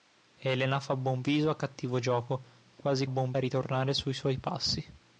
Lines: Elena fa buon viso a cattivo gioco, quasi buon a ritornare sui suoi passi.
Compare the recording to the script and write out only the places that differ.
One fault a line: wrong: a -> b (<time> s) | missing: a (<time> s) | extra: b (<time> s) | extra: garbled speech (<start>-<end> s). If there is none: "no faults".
no faults